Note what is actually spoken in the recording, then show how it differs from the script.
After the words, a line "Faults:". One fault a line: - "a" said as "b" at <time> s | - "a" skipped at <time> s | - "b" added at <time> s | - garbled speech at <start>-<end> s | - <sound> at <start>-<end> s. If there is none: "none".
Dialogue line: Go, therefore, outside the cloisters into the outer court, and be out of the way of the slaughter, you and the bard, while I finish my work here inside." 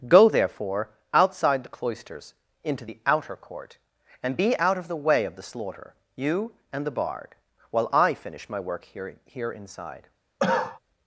Go, therefore, outside the cloisters into the outer court, and be out of the way of the slaughter, you and the bard, while I finish my work here here inside."
Faults:
- "here" added at 9.2 s
- cough at 10.4-10.8 s